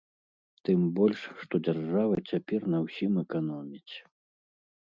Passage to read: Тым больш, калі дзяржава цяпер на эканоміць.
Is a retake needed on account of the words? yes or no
yes